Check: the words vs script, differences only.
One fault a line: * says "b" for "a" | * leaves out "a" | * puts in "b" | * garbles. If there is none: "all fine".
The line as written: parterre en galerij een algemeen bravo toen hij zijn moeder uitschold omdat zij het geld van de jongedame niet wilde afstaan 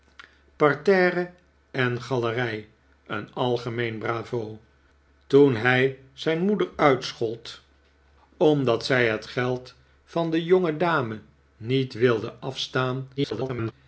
* garbles